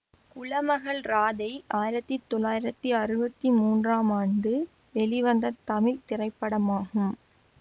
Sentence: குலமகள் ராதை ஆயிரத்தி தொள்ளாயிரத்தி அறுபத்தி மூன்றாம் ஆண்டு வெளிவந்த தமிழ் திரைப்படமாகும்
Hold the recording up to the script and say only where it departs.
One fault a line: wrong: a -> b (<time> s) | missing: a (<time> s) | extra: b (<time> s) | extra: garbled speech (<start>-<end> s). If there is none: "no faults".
no faults